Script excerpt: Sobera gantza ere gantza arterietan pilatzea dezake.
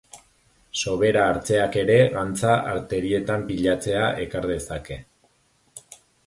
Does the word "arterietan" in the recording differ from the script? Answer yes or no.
no